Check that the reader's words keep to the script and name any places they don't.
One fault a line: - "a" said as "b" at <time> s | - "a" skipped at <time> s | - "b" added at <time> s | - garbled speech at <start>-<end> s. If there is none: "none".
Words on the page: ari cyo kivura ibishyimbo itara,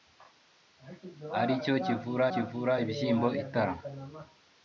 - "kivura" added at 2.3 s